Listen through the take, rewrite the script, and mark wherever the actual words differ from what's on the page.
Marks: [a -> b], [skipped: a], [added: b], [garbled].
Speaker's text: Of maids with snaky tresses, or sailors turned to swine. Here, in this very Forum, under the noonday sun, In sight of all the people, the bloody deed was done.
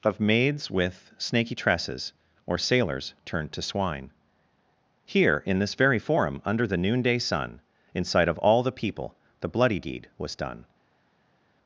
Of maids with snaky tresses, or sailors turned to swine. Here, in this very Forum, under the noonday sun, In sight of all the people, the bloody deed was done.